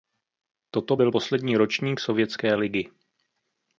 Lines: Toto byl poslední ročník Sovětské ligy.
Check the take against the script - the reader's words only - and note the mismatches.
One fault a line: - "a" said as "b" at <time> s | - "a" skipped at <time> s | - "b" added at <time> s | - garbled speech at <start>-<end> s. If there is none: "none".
none